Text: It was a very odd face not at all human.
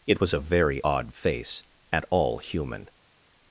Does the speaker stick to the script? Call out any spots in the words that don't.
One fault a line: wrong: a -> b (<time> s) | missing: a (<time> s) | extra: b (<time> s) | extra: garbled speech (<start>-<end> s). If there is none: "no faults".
missing: not (1.6 s)